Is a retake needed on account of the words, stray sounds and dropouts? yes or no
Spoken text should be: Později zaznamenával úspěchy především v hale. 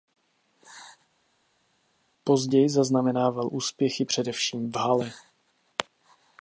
no